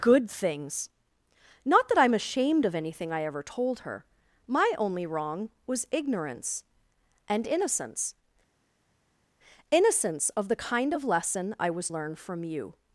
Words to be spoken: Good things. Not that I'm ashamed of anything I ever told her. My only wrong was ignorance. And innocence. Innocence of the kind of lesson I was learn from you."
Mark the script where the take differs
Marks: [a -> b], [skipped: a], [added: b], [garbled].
Good things. Not that I'm ashamed of anything I ever told her. My only wrong was ignorance. And innocence. Innocence of the kind of lesson I was learn from you."